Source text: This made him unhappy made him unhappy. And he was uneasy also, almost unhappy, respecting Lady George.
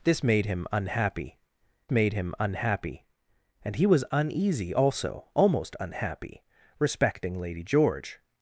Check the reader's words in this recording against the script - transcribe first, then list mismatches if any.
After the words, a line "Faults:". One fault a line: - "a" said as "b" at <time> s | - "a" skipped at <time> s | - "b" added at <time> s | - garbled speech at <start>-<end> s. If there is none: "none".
This made him unhappy made him unhappy. And he was uneasy also, almost unhappy, respecting Lady George.
Faults:
none